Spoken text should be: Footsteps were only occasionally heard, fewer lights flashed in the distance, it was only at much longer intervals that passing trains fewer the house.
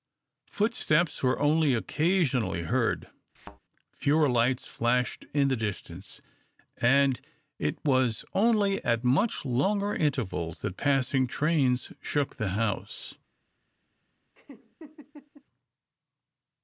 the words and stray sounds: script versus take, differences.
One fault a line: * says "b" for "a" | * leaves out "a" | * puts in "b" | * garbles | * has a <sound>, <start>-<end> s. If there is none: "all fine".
* has a thud, 3.4-3.6 s
* puts in "and"
* says "shook" for "fewer"
* has a laugh, 14.3-15.4 s